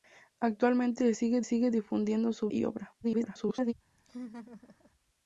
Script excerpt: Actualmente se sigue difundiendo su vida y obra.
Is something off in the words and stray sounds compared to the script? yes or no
yes